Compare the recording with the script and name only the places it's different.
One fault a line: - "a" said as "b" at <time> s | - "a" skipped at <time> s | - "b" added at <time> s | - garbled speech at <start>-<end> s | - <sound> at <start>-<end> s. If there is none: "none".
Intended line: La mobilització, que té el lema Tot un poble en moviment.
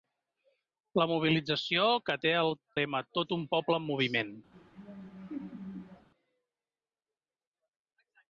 - "el" skipped at 2.3 s
- laugh at 4.5-6.1 s